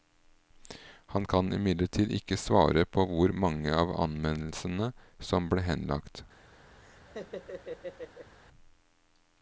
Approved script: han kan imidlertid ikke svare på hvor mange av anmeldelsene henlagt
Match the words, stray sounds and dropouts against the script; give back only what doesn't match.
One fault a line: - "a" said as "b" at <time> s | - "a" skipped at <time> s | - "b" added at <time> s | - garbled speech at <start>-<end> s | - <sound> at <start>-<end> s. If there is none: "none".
- "som ble" added at 5.3 s
- laugh at 6.8-8.3 s